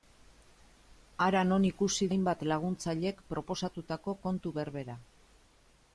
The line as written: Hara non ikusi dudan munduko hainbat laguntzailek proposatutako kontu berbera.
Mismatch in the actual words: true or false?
true